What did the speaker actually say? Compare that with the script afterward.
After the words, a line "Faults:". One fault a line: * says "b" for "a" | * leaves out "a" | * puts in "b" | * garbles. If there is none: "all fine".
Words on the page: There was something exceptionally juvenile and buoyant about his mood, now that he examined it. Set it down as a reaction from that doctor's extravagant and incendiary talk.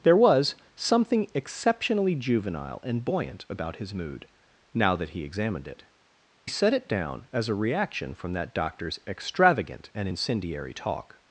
There was something exceptionally juvenile and buoyant about his mood, now that he examined it. Set it down as a reaction from that doctor's extravagant and incendiary talk.
Faults:
all fine